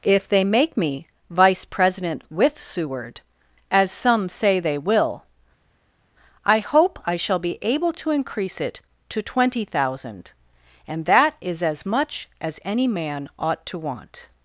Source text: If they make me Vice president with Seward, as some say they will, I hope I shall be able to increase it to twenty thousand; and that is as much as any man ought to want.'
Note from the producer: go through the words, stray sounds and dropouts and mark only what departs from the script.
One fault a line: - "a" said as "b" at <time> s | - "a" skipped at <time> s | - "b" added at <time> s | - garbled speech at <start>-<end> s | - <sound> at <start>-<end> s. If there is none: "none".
none